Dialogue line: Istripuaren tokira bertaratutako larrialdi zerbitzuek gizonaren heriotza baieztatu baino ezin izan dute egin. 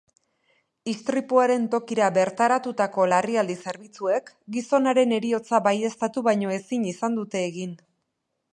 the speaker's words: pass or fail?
pass